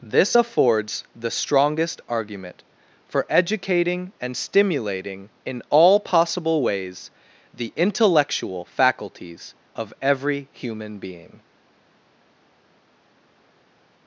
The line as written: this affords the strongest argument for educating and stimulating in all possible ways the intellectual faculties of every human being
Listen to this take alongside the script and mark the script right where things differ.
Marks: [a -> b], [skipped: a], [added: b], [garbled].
this affords the strongest argument for educating and stimulating in all possible ways the intellectual faculties of every human being